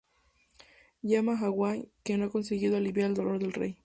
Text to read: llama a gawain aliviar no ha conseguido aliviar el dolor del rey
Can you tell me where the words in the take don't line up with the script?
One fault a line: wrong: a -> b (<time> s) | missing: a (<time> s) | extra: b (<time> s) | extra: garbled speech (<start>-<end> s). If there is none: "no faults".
wrong: aliviar -> que (2.0 s)